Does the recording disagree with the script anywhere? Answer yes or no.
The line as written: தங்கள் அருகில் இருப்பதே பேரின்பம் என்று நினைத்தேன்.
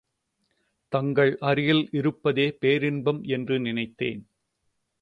no